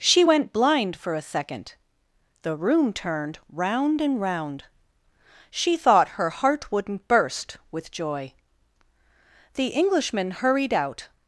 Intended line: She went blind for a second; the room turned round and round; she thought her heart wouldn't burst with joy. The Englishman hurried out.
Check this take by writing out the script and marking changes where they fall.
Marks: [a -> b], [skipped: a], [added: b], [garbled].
She went blind for a second; the room turned round and round; she thought her heart wouldn't burst with joy. The Englishman hurried out.